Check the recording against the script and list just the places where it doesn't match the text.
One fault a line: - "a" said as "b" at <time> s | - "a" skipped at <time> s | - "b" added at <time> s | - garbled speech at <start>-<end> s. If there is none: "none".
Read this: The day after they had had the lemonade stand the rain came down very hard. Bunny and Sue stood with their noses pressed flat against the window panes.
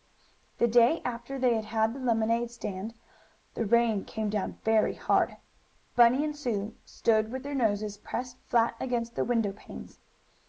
none